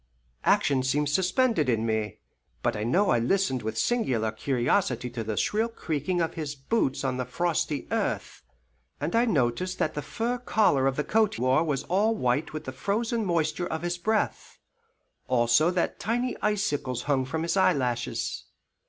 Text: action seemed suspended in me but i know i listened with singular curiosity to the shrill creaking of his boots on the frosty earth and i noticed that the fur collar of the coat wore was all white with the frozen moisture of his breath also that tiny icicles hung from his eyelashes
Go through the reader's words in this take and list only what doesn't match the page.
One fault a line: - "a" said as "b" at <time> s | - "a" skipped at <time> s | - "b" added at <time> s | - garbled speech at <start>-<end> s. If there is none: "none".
none